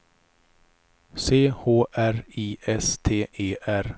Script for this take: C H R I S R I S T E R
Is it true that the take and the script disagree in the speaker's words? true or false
true